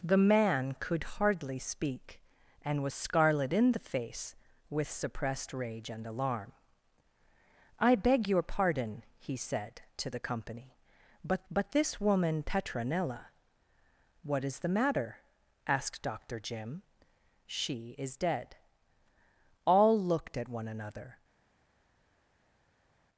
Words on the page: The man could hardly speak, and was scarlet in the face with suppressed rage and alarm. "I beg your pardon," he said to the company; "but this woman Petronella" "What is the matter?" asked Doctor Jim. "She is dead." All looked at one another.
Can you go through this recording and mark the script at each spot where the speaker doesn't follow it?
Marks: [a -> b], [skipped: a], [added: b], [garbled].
The man could hardly speak, and was scarlet in the face with suppressed rage and alarm. "I beg your pardon," he said to the company; "but [added: but] this woman Petronella" "What is the matter?" asked Doctor Jim. "She is dead." All looked at one another.